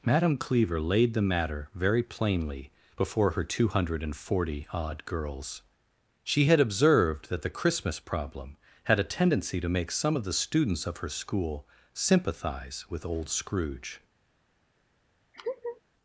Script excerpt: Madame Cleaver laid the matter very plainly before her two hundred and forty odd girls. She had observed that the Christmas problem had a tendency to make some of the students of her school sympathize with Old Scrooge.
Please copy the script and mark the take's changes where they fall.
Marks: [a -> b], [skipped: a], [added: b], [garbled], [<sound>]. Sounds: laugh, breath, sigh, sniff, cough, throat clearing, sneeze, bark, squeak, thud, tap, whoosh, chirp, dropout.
Madame Cleaver laid the matter very plainly before her two hundred and forty odd girls. She had observed that the Christmas problem had a tendency to make some of the students of her school sympathize with Old Scrooge. [laugh]